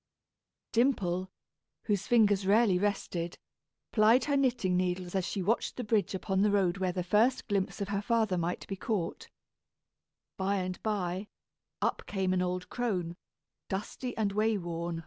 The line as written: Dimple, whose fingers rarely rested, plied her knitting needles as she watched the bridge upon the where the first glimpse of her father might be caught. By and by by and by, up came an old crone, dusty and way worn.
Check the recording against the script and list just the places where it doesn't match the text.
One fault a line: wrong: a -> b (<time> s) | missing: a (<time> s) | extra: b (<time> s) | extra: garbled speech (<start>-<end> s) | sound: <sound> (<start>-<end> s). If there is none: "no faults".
extra: road (6.5 s)
missing: by and by (11.3 s)